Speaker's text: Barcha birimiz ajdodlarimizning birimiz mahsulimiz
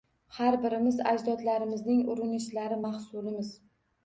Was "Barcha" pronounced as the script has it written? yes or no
no